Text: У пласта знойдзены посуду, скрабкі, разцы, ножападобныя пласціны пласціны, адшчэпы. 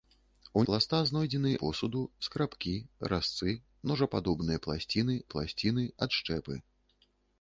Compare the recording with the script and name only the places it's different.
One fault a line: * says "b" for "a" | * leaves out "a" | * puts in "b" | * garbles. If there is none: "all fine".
all fine